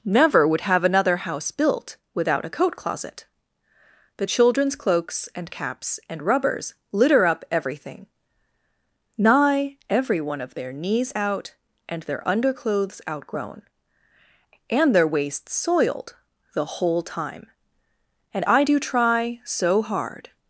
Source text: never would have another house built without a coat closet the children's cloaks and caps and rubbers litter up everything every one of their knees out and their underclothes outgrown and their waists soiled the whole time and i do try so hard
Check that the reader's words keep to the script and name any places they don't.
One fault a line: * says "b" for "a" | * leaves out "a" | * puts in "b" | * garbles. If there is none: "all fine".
* puts in "nigh"